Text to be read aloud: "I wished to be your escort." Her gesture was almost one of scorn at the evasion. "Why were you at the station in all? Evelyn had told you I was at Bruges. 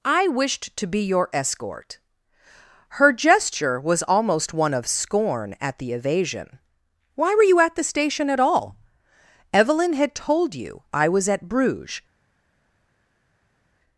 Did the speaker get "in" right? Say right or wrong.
wrong